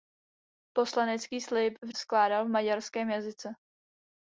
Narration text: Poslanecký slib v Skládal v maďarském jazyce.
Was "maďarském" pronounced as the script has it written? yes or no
yes